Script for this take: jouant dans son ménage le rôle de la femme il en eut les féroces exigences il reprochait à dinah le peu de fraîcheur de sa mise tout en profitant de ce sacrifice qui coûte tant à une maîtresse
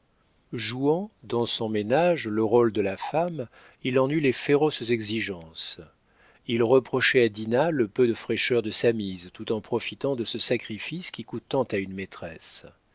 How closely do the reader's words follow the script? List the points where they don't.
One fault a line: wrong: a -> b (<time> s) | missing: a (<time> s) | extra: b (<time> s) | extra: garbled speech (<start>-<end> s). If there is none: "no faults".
no faults